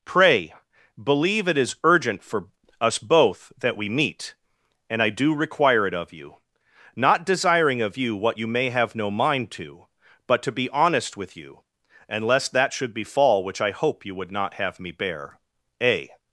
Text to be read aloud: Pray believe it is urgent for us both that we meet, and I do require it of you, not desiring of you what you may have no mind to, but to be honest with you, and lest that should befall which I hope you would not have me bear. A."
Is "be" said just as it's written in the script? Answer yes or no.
yes